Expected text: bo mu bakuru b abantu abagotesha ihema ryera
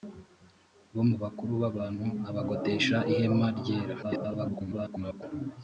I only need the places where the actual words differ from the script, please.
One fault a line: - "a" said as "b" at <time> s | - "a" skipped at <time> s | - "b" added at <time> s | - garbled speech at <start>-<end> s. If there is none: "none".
- garbled speech at 4.0-5.2 s